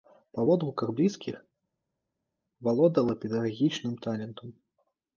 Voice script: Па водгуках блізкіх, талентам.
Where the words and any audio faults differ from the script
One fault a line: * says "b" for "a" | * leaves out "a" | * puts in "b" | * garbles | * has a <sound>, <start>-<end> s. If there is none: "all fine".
* puts in "валодала педагагічным"